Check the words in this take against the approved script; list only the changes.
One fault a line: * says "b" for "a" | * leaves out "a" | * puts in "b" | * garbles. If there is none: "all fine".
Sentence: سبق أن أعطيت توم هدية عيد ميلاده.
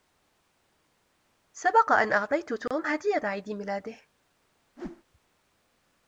all fine